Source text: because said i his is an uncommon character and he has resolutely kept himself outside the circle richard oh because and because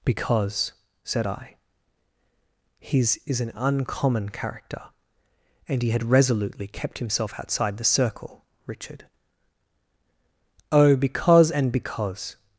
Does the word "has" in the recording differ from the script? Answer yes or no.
yes